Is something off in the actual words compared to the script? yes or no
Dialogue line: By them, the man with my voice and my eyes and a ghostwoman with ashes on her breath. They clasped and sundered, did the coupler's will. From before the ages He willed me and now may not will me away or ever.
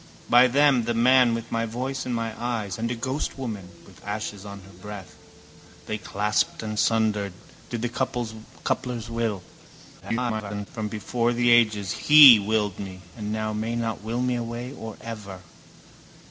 yes